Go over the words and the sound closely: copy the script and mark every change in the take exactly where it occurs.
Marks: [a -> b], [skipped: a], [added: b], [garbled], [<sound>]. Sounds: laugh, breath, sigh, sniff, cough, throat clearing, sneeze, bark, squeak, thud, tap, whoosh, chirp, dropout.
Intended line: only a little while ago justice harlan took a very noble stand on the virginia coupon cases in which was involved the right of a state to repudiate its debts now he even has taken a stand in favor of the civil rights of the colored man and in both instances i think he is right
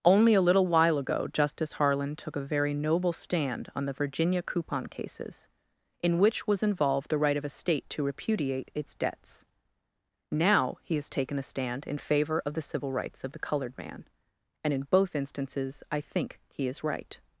only a little while ago justice harlan took a very noble stand on the virginia coupon cases in which was involved the right of a state to repudiate its debts now he [skipped: even] has taken a stand in favor of the civil rights of the colored man and in both instances i think he is right